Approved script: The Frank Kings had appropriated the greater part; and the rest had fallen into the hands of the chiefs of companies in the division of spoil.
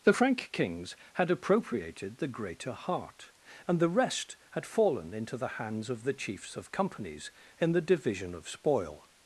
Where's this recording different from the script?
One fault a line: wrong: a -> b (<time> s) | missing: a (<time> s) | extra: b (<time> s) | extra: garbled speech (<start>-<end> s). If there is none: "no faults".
wrong: part -> heart (2.7 s)